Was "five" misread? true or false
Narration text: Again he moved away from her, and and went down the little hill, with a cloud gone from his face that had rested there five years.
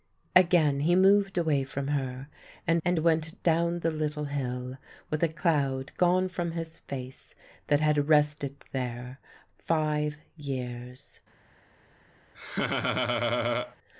false